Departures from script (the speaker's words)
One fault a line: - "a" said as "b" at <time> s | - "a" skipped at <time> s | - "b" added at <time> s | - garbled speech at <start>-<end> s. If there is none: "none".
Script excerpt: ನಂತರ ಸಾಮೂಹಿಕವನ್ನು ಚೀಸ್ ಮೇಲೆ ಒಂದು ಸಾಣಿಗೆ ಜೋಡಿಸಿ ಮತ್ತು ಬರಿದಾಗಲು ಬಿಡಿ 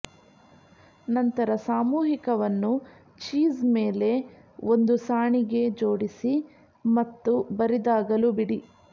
none